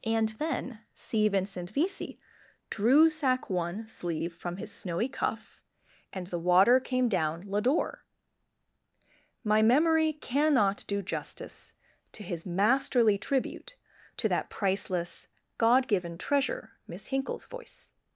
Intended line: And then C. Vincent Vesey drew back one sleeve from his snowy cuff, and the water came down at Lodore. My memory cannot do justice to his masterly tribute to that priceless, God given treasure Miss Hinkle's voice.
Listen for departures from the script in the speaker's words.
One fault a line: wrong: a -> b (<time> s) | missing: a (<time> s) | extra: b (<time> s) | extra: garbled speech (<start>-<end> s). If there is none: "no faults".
wrong: back -> sack (3.1 s)
missing: at (7.4 s)